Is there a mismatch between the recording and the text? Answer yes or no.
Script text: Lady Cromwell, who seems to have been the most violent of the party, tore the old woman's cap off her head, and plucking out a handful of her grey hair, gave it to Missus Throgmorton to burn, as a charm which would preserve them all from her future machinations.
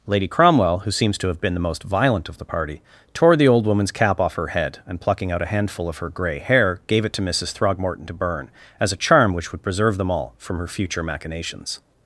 no